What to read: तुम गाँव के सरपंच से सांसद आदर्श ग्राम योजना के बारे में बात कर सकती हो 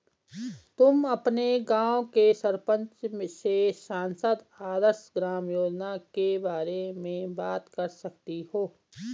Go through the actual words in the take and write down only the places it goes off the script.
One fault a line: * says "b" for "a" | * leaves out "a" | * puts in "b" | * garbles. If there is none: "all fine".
* puts in "अपने"